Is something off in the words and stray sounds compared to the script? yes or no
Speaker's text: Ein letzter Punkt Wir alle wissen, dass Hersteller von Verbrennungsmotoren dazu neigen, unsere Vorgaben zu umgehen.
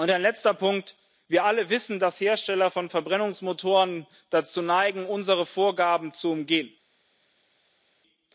no